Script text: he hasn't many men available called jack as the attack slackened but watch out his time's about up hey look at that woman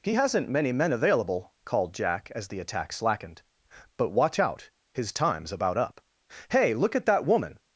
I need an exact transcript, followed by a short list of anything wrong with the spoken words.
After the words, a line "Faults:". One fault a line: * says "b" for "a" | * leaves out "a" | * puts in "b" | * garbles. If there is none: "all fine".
he hasn't many men available called jack as the attack slackened but watch out his time's about up hey look at that woman
Faults:
all fine